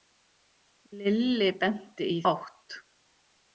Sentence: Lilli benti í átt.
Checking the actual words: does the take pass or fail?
pass